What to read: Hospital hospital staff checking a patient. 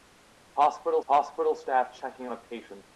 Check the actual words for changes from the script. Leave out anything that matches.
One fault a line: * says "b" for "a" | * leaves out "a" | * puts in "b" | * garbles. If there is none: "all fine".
all fine